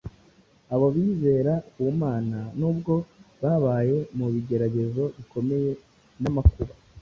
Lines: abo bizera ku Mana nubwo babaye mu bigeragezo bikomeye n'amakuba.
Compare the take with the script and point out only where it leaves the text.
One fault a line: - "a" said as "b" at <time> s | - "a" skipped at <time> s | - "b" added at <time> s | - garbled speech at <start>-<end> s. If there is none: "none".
none